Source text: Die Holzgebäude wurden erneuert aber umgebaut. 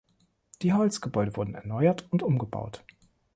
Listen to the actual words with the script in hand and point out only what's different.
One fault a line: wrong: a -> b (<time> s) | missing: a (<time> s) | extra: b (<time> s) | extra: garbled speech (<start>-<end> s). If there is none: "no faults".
wrong: aber -> und (2.1 s)